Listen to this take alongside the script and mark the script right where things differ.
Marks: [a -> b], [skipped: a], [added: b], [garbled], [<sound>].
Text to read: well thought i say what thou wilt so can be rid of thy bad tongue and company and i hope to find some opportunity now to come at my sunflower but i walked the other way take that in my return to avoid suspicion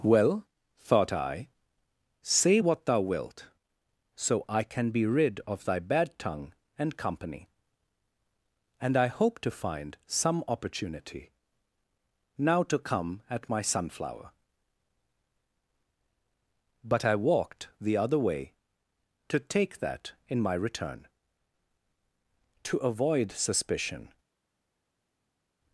well thought i say what thou wilt so [added: i] can be rid of thy bad tongue and company and i hope to find some opportunity now to come at my sunflower but i walked the other way [added: to] take that in my return to avoid suspicion